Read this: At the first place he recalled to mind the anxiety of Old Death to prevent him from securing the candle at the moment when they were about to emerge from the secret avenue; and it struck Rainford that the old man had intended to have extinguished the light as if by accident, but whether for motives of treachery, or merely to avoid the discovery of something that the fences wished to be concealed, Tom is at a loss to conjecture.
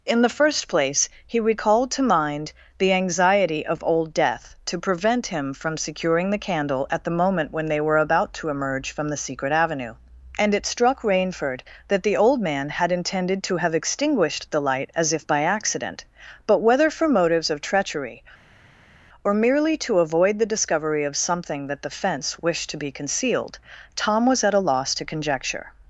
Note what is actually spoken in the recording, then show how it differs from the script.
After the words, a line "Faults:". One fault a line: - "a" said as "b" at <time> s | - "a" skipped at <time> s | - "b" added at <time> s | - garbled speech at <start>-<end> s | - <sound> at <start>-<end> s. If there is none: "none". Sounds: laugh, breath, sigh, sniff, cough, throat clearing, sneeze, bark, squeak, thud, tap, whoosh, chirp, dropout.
In the first place he recalled to mind the anxiety of Old Death to prevent him from securing the candle at the moment when they were about to emerge from the secret avenue; and it struck Rainford that the old man had intended to have extinguished the light as if by accident, but whether for motives of treachery, or merely to avoid the discovery of something that the fence wished to be concealed, Tom was at a loss to conjecture.
Faults:
- "At" said as "In" at 0.0 s
- "fences" said as "fence" at 22.0 s
- "is" said as "was" at 24.3 s